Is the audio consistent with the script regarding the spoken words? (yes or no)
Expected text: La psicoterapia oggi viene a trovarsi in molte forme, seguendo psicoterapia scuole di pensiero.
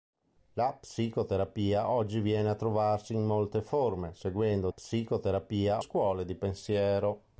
yes